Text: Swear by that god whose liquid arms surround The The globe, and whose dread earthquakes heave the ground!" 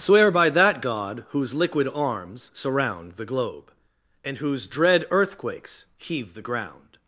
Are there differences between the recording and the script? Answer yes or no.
yes